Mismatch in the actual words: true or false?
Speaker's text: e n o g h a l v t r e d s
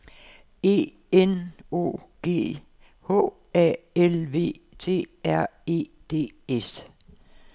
false